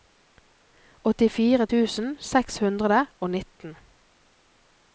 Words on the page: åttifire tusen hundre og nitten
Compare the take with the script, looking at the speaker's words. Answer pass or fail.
fail